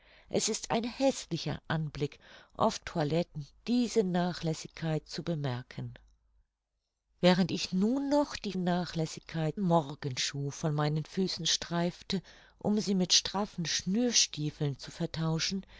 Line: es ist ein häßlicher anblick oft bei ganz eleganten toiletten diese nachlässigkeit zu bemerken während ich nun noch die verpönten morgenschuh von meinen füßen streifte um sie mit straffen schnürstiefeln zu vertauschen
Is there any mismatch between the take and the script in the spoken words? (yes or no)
yes